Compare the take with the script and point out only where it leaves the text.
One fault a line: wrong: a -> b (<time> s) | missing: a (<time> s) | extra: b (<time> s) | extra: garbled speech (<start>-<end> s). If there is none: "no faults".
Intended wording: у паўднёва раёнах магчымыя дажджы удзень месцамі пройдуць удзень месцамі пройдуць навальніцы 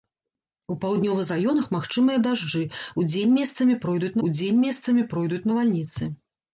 no faults